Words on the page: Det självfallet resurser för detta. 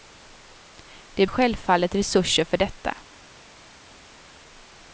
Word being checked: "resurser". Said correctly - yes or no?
yes